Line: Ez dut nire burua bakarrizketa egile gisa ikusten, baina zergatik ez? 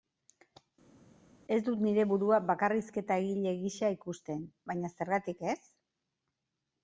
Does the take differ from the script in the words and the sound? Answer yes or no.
no